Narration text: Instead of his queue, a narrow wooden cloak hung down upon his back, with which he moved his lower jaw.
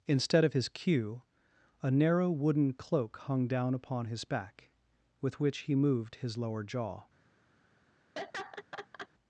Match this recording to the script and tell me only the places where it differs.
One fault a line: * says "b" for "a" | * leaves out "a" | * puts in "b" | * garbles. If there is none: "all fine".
all fine